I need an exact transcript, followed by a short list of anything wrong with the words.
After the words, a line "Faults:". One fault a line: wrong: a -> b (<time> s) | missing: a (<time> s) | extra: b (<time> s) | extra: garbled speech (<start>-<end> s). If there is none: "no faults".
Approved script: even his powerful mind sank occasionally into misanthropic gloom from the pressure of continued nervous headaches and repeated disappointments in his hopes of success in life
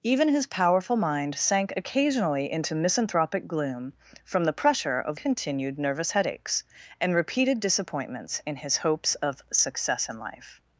even his powerful mind sank occasionally into misanthropic gloom from the pressure of continued nervous headaches and repeated disappointments in his hopes of success in life
Faults:
no faults